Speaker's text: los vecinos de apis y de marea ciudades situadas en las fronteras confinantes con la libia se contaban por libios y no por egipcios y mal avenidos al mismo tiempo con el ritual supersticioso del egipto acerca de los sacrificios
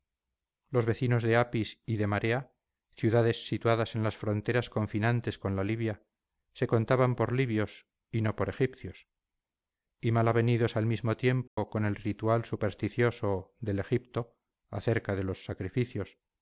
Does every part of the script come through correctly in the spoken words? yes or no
yes